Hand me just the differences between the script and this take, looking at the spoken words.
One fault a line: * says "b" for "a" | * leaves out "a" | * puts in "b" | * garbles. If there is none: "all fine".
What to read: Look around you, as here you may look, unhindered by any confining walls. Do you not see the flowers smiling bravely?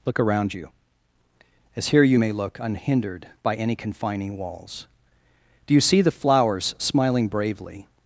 * leaves out "not"